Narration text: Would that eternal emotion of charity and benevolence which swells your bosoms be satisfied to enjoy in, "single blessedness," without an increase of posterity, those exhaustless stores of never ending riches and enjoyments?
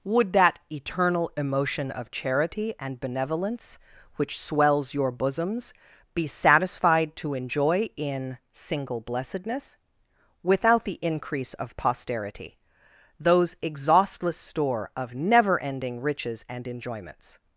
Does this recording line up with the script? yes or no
no